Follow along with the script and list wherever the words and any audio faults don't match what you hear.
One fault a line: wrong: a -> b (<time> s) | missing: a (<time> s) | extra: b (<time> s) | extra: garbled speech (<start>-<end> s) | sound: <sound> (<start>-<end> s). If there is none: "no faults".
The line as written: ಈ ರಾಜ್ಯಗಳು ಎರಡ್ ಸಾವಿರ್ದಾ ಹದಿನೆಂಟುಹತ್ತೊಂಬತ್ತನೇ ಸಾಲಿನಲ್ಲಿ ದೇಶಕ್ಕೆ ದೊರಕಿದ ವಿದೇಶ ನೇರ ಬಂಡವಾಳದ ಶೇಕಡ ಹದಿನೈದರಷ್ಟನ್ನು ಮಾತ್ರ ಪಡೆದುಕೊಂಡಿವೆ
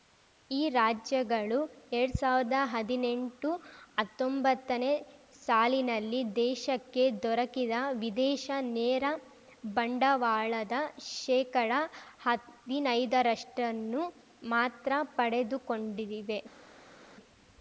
no faults